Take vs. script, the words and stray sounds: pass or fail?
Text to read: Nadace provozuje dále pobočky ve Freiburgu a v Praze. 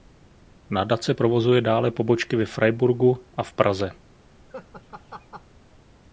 fail